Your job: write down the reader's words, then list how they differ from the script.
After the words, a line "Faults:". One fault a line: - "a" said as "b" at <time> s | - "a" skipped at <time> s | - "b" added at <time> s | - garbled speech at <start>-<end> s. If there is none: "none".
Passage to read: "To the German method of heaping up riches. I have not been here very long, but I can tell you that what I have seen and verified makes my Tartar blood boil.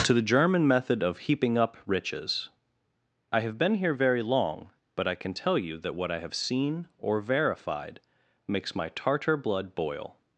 "To the German method of heaping up riches. I have been here very long, but I can tell you that what I have seen or verified makes my Tartar blood boil.
Faults:
- "not" skipped at 3.6 s
- "and" said as "or" at 7.0 s